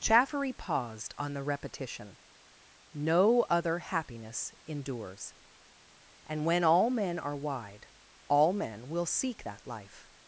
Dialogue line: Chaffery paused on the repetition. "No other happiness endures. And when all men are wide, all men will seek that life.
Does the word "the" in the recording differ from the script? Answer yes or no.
no